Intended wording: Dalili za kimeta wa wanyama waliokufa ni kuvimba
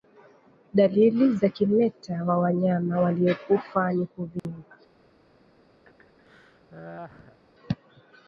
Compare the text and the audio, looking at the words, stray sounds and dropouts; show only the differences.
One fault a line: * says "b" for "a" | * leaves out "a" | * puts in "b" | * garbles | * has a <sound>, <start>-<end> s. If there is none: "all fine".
* has a dropout, 4.4-4.4 s
* has a laugh, 5.8-7.4 s